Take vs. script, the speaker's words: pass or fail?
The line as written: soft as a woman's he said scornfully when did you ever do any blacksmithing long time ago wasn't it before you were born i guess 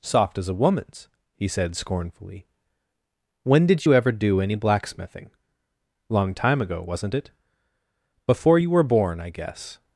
pass